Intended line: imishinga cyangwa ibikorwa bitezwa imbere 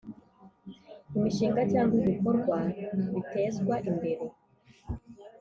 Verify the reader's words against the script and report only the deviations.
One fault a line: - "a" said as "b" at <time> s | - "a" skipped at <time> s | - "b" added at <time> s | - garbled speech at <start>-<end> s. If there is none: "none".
none